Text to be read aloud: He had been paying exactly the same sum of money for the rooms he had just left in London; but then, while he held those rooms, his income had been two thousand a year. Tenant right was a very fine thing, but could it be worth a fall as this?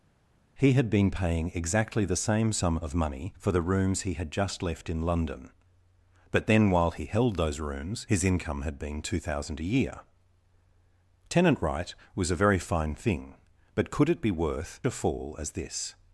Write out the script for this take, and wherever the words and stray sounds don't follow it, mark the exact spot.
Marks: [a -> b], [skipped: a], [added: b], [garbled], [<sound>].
He had been paying exactly the same sum of money for the rooms he had just left in London; but then, while he held those rooms, his income had been two thousand a year. Tenant right was a very fine thing, but could it be worth a fall as this?